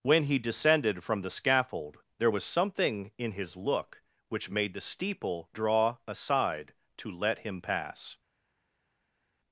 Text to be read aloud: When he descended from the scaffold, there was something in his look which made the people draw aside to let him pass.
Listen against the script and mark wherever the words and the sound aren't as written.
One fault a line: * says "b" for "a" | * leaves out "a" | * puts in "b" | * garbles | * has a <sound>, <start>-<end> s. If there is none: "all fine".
* says "steeple" for "people"